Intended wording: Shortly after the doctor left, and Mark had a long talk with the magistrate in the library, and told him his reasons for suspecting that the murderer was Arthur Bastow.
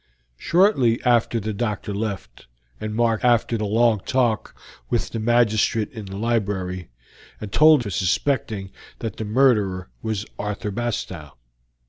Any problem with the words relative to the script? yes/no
yes